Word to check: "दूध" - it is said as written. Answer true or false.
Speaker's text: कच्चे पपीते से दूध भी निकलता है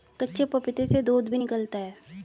true